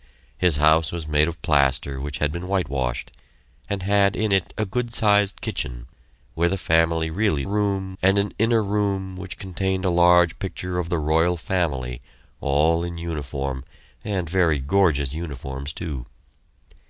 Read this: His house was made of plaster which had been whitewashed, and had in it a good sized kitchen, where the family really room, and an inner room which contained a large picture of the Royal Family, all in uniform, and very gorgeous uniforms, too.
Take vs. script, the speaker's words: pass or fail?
pass